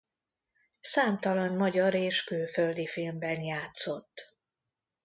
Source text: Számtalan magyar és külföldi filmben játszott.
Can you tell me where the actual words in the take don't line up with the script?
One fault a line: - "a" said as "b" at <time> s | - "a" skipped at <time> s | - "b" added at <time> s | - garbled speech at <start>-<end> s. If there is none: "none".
none